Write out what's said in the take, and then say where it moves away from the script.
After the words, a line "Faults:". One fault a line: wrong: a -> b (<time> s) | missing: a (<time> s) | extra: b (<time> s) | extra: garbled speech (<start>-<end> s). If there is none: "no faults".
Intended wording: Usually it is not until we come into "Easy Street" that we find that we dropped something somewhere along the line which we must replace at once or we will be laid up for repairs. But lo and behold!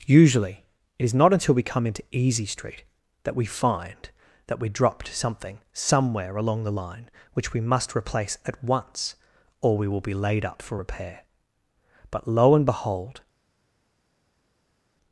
Usually it is not until we come into "Easy Street" that we find that we dropped something somewhere along the line which we must replace at once or we will be laid up for repair. But lo and behold!
Faults:
wrong: repairs -> repair (10.7 s)